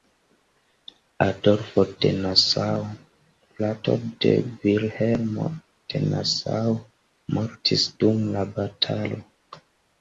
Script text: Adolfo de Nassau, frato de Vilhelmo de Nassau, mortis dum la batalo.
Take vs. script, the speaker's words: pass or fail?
pass